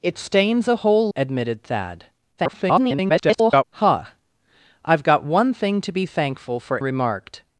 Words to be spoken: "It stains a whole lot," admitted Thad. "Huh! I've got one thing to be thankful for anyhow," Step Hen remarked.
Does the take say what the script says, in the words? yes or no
no